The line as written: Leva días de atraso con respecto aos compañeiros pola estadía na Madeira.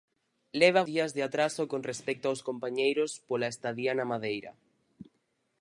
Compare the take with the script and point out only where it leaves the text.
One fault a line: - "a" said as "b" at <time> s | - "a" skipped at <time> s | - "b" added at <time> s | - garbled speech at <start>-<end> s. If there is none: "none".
none